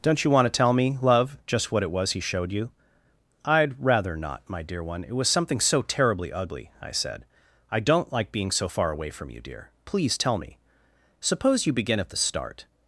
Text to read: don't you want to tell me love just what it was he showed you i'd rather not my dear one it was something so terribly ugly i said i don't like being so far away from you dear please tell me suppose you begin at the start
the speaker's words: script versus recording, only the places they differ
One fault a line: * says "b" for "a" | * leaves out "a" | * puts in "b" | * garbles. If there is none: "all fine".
all fine